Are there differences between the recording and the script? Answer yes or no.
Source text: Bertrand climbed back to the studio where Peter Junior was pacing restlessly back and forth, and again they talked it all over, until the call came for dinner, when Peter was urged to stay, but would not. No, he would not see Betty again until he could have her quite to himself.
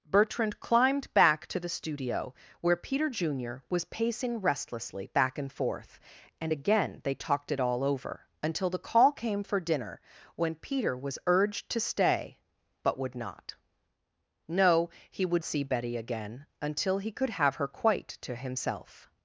yes